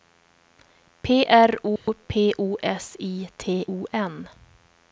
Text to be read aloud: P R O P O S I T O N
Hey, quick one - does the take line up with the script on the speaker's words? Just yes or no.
yes